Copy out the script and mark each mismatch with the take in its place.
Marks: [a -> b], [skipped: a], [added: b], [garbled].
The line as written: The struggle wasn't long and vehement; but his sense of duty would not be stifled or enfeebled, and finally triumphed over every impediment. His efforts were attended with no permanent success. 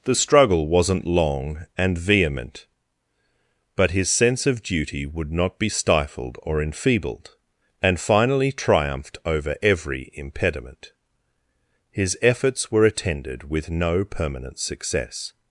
The struggle wasn't long and vehement; but his sense of duty would not be stifled or enfeebled, and finally triumphed over every impediment. His efforts were attended with no permanent success.